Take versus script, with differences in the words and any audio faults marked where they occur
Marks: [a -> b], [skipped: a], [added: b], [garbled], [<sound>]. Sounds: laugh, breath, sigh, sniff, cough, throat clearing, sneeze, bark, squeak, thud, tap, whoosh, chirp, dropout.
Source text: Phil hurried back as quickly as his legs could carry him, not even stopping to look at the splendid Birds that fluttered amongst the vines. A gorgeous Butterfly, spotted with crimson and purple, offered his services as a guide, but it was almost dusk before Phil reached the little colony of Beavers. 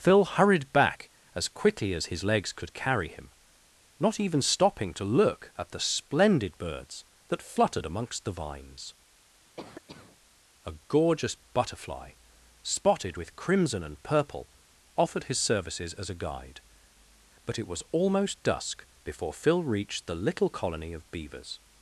Phil hurried back as quickly as his legs could carry him, not even stopping to look at the splendid Birds that fluttered amongst the vines. [cough] A gorgeous Butterfly, spotted with crimson and purple, offered his services as a guide, but it was almost dusk before Phil reached the little colony of Beavers.